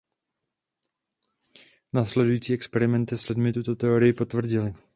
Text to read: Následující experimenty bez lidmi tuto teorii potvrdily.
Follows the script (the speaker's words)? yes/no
no